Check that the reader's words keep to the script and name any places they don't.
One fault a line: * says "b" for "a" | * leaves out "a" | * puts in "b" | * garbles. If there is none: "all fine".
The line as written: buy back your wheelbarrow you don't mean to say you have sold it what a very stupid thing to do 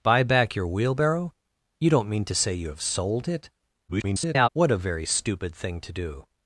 * garbles